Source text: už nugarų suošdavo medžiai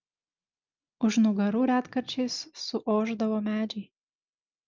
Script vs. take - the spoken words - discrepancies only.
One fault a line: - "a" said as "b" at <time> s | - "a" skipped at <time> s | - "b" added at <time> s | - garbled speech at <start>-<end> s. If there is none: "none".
- "retkarčiais" added at 1.7 s